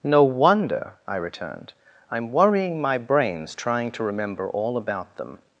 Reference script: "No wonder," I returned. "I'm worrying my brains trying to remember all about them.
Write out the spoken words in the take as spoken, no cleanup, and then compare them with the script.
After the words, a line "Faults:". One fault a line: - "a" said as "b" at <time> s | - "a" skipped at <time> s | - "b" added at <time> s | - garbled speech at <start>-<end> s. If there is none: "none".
"No wonder," I returned. "I'm worrying my brains trying to remember all about them.
Faults:
none